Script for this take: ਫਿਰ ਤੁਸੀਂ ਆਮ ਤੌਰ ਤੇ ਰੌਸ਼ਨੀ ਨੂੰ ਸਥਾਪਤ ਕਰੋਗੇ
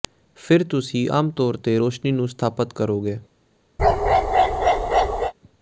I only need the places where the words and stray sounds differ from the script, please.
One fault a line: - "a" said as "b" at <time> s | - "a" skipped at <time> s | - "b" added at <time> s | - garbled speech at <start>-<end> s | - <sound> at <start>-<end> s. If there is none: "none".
- bark at 3.8-5.3 s